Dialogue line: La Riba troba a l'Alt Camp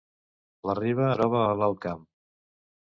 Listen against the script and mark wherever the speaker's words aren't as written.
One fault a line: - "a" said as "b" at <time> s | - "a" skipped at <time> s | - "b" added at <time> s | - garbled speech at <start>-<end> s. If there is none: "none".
none